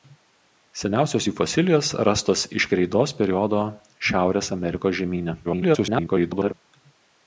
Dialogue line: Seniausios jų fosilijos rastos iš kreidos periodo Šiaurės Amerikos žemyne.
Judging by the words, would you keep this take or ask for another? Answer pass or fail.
fail